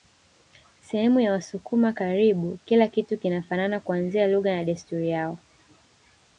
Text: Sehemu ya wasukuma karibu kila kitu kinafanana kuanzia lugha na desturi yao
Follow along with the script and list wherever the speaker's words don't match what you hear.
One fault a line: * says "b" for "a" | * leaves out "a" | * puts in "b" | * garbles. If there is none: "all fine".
all fine